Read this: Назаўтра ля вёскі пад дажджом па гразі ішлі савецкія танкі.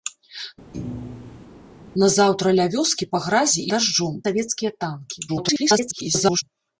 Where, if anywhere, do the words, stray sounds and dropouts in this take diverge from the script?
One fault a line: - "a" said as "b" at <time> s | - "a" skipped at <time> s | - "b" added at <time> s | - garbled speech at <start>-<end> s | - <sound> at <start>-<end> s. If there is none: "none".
- thud at 0.7-1.5 s
- "пад дажджом" skipped at 3.1 s
- "ішлі" said as "дажджом" at 3.7 s
- garbled speech at 5.3-6.4 s